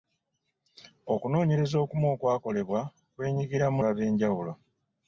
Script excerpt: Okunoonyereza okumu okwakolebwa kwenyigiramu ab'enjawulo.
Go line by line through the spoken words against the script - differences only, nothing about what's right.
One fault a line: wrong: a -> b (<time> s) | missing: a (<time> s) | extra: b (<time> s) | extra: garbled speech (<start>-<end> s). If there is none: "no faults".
no faults